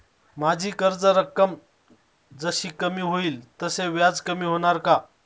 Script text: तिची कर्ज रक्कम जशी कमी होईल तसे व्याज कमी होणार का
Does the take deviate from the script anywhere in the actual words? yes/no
yes